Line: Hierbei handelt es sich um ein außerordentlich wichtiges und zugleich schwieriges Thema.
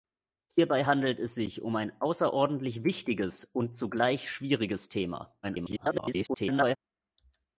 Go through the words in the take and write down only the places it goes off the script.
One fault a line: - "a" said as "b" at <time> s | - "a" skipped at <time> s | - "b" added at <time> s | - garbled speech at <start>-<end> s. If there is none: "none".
- garbled speech at 5.4-6.8 s